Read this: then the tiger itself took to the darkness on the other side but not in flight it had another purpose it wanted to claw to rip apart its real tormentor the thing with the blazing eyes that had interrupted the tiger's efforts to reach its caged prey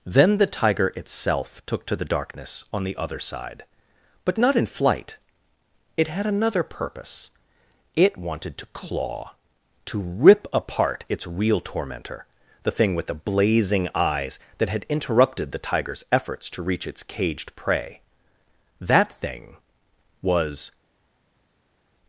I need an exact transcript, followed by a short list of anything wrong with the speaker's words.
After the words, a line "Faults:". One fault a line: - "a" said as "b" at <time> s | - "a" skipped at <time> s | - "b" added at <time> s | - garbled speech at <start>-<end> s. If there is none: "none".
then the tiger itself took to the darkness on the other side but not in flight it had another purpose it wanted to claw to rip apart its real tormentor the thing with the blazing eyes that had interrupted the tiger's efforts to reach its caged prey that thing was
Faults:
- "that thing was" added at 18.8 s